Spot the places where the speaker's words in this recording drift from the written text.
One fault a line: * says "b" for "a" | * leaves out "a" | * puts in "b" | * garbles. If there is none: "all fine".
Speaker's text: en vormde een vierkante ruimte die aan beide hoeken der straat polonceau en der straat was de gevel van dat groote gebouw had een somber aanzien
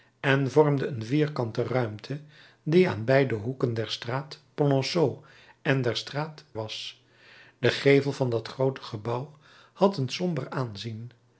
all fine